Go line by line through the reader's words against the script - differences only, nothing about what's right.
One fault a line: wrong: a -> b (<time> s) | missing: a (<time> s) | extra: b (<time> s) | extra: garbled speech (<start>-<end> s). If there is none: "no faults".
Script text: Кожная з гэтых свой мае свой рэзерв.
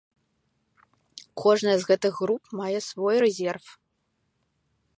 wrong: свой -> груп (2.2 s)